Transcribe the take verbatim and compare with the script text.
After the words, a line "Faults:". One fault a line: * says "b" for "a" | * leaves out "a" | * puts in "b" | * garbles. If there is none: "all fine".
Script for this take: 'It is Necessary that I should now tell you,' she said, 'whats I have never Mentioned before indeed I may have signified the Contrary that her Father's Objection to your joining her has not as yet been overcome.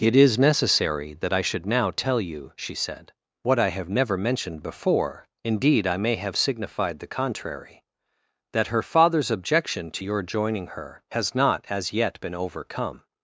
'It is Necessary that I should now tell you,' she said, 'what I have never Mentioned before indeed I may have signified the Contrary that her Father's Objection to your joining her has not as yet been overcome.
Faults:
* says "what" for "whats"